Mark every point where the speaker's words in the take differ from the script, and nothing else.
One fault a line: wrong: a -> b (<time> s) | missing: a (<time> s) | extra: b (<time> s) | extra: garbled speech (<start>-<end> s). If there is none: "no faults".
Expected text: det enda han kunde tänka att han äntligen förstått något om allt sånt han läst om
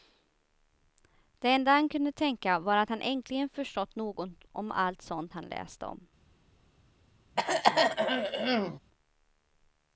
extra: var (2.6 s)